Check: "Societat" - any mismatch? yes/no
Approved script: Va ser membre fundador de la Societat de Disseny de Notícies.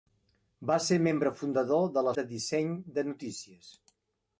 yes